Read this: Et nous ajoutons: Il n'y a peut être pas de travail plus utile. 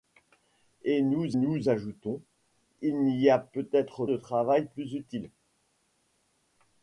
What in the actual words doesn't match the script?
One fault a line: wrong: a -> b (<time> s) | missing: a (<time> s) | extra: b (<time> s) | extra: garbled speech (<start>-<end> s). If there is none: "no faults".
extra: nous (1.3 s)
missing: pas (4.1 s)